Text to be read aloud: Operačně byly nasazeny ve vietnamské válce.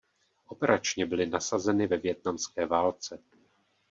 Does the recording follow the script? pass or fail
pass